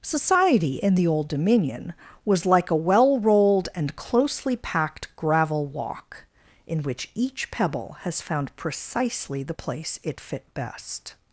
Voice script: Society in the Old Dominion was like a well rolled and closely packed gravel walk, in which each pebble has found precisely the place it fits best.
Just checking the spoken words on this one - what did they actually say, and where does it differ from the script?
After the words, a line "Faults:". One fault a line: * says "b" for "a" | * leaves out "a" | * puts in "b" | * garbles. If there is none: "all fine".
Society in the Old Dominion was like a well rolled and closely packed gravel walk, in which each pebble has found precisely the place it fit best.
Faults:
* says "fit" for "fits"